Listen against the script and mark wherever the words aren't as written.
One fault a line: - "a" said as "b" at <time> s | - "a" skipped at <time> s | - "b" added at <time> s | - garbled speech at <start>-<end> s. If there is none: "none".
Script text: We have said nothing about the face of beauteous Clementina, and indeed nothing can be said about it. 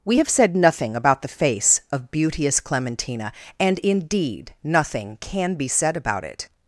none